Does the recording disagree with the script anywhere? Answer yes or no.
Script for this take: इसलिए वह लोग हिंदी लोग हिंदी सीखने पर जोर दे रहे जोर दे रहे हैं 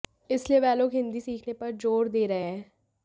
yes